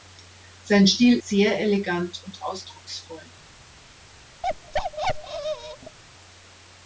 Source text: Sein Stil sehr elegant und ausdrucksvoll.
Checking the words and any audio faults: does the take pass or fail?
fail